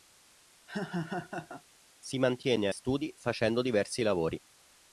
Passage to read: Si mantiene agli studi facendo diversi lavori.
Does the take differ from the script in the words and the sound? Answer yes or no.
yes